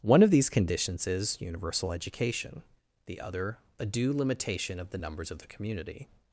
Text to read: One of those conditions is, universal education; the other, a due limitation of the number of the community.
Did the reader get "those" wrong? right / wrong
wrong